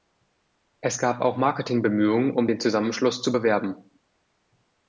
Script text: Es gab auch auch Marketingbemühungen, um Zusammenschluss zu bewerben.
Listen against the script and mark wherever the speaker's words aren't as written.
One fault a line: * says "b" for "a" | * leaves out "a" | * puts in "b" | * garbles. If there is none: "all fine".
* leaves out "auch"
* puts in "den"